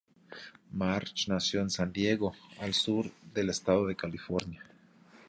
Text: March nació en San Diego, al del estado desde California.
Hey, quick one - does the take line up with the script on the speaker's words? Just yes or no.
no